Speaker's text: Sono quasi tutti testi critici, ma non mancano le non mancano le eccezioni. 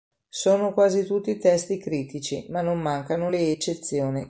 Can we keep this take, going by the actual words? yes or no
no